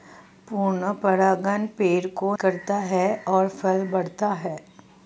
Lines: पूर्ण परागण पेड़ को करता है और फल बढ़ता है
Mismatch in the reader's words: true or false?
false